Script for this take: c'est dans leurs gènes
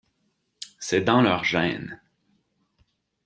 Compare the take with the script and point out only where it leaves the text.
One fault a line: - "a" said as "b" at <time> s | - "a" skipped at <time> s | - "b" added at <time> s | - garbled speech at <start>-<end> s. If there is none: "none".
none